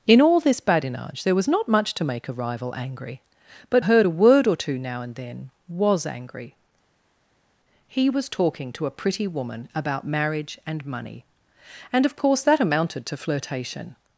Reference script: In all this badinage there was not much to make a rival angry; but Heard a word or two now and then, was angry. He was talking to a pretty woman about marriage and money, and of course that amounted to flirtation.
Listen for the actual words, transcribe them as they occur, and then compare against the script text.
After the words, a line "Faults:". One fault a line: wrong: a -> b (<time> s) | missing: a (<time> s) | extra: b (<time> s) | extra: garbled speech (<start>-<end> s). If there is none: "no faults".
In all this badinage there was not much to make a rival angry; but Heard a word or two now and then, was angry. He was talking to a pretty woman about marriage and money, and of course that amounted to flirtation.
Faults:
no faults